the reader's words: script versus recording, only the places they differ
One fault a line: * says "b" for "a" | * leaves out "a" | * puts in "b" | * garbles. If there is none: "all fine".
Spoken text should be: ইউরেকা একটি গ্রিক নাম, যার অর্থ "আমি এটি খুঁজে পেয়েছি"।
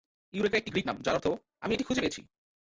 all fine